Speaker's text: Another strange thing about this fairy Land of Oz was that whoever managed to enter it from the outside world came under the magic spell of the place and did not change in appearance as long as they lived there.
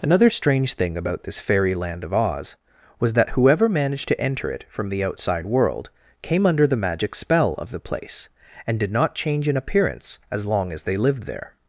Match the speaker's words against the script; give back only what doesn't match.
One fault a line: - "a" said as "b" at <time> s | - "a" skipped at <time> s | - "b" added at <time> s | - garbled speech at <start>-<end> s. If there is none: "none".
none